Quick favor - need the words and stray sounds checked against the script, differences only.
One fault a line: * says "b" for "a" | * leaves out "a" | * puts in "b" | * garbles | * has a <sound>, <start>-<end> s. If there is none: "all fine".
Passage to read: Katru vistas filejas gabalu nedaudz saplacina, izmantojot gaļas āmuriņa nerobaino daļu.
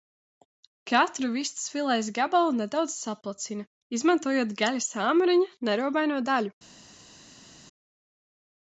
all fine